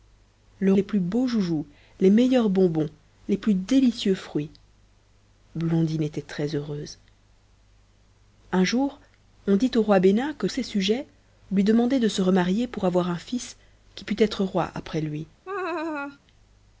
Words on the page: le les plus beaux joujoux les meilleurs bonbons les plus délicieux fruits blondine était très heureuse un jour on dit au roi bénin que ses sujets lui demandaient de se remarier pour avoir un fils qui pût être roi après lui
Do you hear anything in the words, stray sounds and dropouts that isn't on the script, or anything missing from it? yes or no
yes